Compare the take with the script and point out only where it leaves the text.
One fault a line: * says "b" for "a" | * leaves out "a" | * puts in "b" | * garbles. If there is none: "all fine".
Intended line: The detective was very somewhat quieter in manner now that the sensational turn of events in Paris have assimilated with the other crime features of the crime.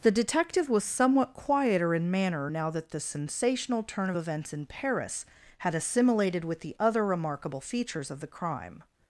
* leaves out "very"
* says "had" for "have"
* says "remarkable" for "crime"